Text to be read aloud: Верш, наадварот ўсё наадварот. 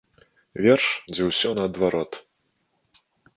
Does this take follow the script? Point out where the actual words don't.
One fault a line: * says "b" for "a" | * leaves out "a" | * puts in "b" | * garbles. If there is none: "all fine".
* says "дзе" for "наадварот"